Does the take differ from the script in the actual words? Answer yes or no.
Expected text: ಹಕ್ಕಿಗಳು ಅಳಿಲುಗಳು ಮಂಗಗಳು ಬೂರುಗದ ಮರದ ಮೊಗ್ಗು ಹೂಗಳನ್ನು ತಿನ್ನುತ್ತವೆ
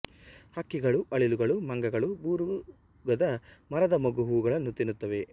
no